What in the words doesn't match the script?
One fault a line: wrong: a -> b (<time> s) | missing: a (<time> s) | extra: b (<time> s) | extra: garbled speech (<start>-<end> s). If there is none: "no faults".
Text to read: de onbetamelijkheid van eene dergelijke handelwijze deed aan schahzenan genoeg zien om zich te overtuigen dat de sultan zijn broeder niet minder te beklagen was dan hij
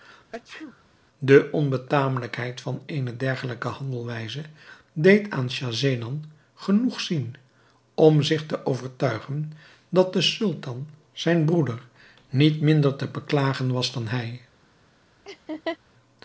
no faults